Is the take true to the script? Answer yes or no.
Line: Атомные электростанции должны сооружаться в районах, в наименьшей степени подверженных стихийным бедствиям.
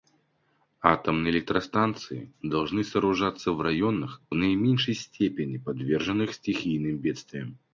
no